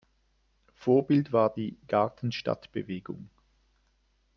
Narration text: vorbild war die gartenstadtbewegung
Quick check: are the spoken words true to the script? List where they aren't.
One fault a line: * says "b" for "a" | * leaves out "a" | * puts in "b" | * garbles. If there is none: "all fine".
all fine